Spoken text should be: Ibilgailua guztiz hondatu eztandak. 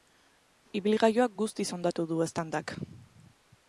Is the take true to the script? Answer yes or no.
no